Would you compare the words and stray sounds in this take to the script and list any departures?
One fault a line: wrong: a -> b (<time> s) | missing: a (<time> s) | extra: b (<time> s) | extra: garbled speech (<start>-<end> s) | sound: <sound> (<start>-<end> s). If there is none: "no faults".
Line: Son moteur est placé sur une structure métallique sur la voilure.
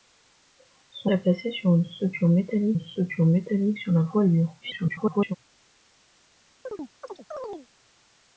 missing: moteur (1.1 s)
extra: une structure métallique (2.7 s)
extra: garbled speech (4.6-5.4 s)
sound: chirp (6.6-7.7 s)